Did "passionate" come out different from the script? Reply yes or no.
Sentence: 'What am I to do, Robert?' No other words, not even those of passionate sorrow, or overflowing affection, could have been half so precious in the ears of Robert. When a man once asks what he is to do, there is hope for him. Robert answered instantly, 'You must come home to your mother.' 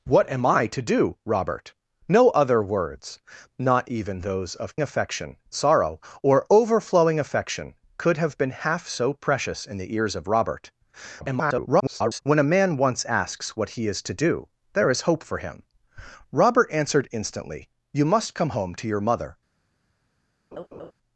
yes